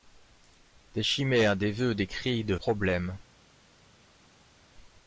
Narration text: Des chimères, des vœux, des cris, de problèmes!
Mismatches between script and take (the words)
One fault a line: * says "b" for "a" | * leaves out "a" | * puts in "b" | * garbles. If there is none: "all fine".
all fine